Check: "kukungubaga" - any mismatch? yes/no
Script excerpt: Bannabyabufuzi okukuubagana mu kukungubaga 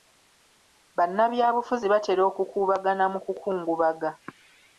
no